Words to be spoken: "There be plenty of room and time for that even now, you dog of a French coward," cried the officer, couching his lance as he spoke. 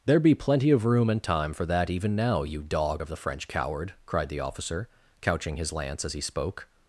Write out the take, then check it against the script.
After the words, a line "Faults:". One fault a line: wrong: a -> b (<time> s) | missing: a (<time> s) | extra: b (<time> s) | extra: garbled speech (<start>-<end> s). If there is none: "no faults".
"There be plenty of room and time for that even now, you dog of the French coward," cried the officer, couching his lance as he spoke.
Faults:
wrong: a -> the (3.1 s)